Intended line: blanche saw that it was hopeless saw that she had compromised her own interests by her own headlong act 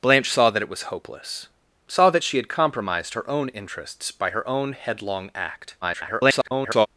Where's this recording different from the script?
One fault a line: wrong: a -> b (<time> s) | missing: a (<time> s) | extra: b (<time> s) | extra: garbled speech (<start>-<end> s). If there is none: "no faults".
extra: garbled speech (5.8-6.9 s)